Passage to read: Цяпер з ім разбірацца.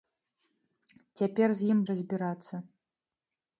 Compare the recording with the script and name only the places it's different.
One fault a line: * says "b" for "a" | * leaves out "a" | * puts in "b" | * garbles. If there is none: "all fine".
all fine